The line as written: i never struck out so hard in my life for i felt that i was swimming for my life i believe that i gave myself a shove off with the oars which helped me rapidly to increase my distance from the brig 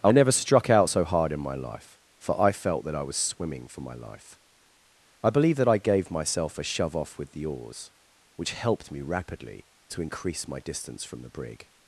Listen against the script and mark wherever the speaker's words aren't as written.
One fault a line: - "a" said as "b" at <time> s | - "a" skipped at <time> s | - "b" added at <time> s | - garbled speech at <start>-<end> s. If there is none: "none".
none